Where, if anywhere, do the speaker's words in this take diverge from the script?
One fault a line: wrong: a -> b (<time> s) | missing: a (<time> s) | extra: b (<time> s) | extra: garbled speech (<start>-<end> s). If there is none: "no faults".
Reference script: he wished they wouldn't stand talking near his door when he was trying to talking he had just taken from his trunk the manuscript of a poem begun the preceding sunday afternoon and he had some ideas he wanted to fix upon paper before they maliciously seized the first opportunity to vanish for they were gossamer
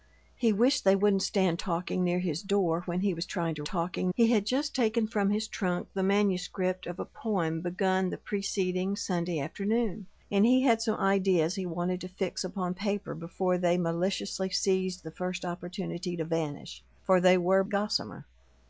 no faults